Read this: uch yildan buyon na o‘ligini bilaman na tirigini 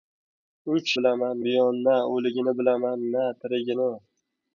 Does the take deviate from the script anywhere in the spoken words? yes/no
yes